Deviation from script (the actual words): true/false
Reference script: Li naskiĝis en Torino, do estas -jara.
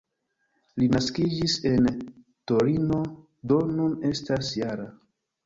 true